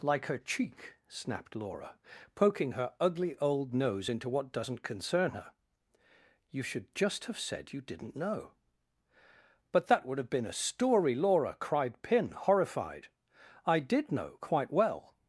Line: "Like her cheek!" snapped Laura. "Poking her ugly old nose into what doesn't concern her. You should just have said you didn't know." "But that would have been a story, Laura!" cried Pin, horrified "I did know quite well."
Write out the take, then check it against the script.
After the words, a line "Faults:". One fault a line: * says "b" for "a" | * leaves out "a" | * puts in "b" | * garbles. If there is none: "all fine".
"Like her cheek!" snapped Laura. "Poking her ugly old nose into what doesn't concern her. You should just have said you didn't know." "But that would have been a story, Laura!" cried Pin, horrified "I did know quite well."
Faults:
all fine